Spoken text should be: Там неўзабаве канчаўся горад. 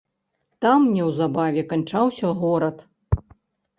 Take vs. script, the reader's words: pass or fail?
pass